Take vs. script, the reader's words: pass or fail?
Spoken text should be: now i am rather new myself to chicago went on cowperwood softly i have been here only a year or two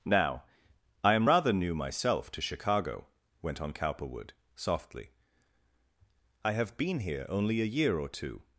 pass